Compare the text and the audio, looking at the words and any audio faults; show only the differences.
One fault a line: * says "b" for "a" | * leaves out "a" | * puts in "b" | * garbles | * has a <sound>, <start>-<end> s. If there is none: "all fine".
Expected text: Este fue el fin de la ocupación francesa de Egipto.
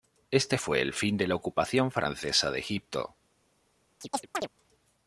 * has a chirp, 4.0-4.5 s